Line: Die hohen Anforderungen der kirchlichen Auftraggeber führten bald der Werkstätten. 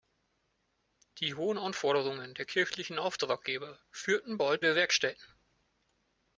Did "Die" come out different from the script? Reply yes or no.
no